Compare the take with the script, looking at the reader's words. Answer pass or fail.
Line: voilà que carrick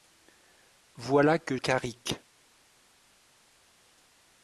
pass